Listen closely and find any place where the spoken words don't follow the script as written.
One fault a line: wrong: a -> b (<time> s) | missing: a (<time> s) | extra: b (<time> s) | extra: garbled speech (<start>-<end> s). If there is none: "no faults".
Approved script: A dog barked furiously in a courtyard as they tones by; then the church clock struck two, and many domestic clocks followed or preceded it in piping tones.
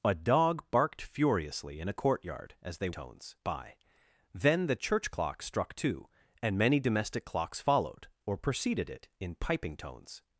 no faults